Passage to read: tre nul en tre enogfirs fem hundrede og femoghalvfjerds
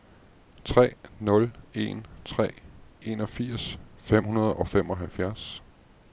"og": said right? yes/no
yes